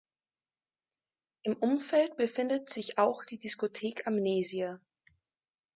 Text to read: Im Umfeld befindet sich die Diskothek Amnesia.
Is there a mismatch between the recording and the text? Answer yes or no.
yes